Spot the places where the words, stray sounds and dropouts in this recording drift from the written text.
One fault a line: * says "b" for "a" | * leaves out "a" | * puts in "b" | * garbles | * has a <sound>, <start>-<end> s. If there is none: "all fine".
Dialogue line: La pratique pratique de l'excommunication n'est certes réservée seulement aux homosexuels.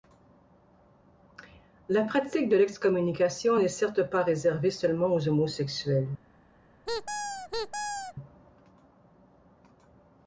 * leaves out "pratique"
* puts in "pas"
* has a squeak, 6.9-8.1 s